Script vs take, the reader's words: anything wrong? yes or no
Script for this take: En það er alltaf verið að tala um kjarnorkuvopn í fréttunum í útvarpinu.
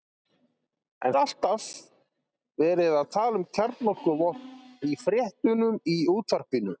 yes